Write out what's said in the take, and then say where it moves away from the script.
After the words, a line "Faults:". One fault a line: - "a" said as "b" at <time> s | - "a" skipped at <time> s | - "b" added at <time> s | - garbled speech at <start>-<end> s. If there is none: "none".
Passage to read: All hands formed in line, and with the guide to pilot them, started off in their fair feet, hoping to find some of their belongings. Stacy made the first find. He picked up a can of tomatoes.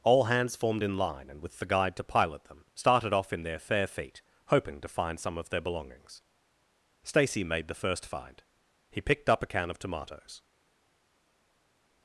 All hands formed in line, and with the guide to pilot them, started off in their fair feet, hoping to find some of their belongings. Stacy made the first find. He picked up a can of tomatoes.
Faults:
none